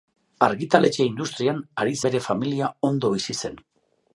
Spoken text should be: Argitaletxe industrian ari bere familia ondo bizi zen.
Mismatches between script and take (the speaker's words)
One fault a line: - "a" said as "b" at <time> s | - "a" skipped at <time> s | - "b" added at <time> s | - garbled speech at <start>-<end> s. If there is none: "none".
none